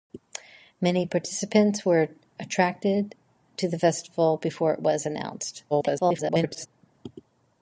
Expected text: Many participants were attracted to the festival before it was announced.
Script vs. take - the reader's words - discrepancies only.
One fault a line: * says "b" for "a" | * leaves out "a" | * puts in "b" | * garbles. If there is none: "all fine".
* garbles